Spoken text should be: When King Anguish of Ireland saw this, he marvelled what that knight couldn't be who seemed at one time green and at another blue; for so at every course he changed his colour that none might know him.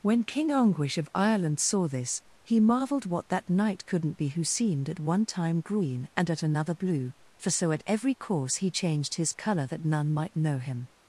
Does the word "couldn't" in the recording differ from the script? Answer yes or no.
no